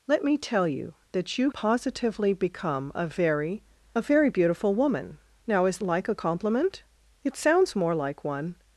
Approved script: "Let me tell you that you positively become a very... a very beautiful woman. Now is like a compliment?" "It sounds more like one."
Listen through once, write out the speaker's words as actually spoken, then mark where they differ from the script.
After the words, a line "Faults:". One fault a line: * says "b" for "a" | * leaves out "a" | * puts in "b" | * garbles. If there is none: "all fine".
"Let me tell you that you positively become a very... a very beautiful woman. Now is like a compliment?" "It sounds more like one."
Faults:
all fine